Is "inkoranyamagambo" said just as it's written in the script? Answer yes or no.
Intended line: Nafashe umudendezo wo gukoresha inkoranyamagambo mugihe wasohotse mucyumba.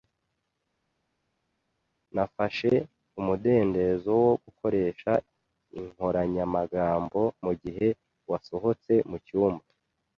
yes